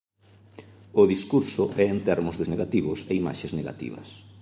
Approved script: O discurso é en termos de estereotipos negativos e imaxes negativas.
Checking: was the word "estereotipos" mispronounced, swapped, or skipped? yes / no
yes